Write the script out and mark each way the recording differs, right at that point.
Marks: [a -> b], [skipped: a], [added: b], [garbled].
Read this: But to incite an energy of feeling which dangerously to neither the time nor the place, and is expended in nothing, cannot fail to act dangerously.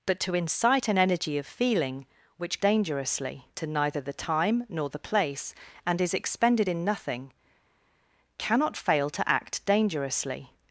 But to incite an energy of feeling which dangerously to neither the time nor the place, and is expended in nothing, cannot fail to act dangerously.